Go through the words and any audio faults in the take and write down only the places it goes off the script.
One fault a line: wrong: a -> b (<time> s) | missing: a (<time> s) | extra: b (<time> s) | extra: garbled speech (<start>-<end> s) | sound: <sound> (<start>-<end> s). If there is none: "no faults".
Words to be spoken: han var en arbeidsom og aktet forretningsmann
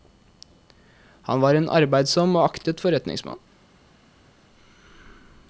no faults